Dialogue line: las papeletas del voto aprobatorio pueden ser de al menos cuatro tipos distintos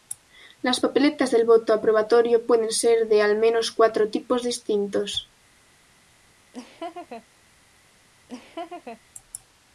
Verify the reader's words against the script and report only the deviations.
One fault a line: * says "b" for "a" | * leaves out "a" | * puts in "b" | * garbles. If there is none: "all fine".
all fine